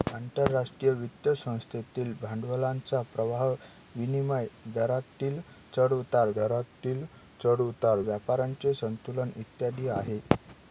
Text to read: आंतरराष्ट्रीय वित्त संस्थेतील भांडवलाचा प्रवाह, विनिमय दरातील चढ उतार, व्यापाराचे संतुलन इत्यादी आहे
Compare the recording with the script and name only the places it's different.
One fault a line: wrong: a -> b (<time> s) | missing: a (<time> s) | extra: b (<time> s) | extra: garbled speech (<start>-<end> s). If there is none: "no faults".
extra: दरातील चढ उतार (6.4 s)